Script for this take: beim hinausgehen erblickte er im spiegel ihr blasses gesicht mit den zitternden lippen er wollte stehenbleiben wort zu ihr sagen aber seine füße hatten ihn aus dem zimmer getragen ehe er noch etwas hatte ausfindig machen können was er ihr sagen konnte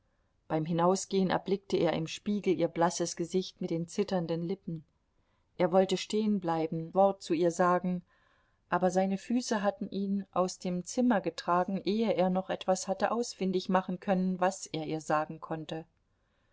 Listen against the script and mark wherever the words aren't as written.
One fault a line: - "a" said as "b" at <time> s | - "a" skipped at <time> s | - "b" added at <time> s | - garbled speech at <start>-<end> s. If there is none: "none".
none